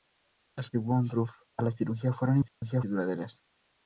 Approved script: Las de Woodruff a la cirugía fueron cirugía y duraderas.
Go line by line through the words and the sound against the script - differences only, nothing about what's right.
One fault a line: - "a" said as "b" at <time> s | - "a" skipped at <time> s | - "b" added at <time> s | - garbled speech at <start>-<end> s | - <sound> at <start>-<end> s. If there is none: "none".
- dropout at 2.5-2.6 s